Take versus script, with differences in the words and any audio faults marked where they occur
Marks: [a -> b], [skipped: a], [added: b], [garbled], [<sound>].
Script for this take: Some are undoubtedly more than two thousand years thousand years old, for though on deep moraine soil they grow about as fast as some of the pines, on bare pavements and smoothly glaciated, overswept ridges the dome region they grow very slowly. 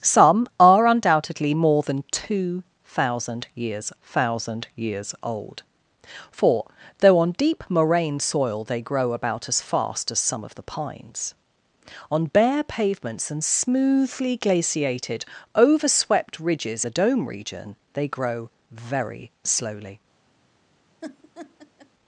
Some are undoubtedly more than two thousand years thousand years old, for though on deep moraine soil they grow about as fast as some of the pines, on bare pavements and smoothly glaciated, overswept ridges the dome region they grow very slowly. [laugh]